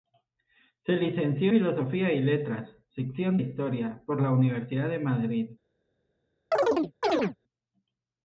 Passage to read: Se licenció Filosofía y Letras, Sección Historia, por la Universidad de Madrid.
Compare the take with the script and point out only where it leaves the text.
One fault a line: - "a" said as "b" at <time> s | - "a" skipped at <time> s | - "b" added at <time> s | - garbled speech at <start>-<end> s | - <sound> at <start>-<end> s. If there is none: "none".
- chirp at 6.5-7.4 s